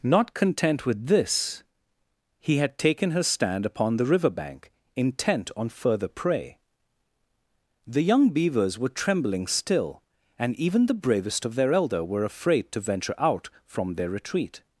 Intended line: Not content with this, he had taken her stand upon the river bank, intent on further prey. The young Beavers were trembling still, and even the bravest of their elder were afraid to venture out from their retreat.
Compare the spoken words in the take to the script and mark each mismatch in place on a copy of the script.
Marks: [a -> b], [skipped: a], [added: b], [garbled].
Not content with this, he had taken her stand upon the river bank, intent on further prey. The young Beavers were trembling still, and even the bravest of their elder were afraid to venture out from their retreat.